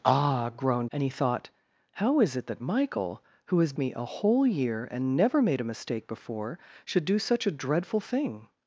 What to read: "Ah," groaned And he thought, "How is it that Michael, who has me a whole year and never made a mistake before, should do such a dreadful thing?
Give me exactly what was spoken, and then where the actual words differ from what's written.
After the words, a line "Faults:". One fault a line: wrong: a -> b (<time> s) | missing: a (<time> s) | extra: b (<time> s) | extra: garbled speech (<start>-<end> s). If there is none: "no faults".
"Ah," groaned And he thought, "How is it that Michael, who has me a whole year and never made a mistake before, should do such a dreadful thing?
Faults:
no faults